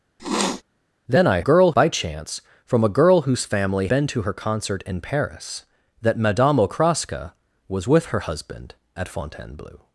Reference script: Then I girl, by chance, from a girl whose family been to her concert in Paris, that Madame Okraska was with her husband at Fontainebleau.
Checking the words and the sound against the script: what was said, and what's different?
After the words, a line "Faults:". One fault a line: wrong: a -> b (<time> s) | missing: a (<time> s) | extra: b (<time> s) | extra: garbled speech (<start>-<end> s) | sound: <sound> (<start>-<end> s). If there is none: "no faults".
Then I girl, by chance, from a girl whose family been to her concert in Paris, that Madame Okraska was with her husband at Fontainebleau.
Faults:
sound: sniff (0.2-0.6 s)